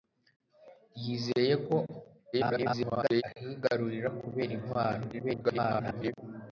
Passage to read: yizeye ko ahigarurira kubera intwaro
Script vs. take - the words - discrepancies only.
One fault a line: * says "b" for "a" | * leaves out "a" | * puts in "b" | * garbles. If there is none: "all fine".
* garbles
* garbles